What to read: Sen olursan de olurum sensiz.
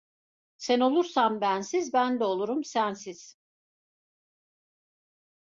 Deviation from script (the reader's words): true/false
true